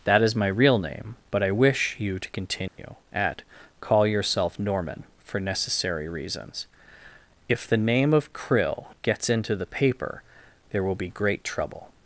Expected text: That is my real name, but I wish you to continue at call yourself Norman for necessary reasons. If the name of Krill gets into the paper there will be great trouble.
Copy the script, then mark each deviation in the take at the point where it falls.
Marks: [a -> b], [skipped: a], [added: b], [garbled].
That is my real name, but I wish you to continue at call yourself Norman for necessary reasons. If the name of Krill gets into the paper there will be great trouble.